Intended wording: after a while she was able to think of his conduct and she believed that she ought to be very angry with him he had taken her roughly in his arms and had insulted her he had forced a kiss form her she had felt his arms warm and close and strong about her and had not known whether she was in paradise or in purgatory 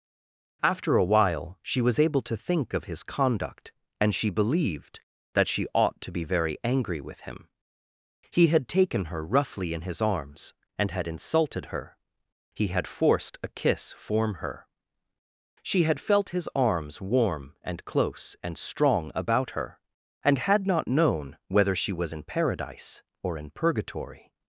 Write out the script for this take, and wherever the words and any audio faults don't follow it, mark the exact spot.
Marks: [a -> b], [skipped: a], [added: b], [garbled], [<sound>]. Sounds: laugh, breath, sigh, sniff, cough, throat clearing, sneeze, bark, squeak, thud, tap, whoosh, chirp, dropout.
after a while she was able to think of his conduct and she believed that she ought to be very angry with him he had taken her roughly in his arms and had insulted her he had forced a kiss form her she had felt his arms warm and close and strong about her and had not known whether she was in paradise or in purgatory